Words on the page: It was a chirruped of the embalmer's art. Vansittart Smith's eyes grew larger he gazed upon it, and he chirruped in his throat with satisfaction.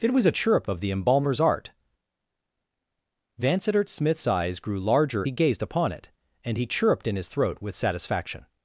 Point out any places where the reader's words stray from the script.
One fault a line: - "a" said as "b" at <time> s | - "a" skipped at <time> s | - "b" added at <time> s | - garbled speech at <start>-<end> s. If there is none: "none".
none